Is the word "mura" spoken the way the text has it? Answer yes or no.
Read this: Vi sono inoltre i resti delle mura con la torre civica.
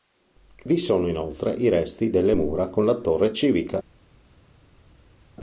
yes